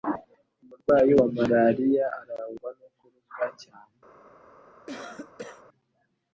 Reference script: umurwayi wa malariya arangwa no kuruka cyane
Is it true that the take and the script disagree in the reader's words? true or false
false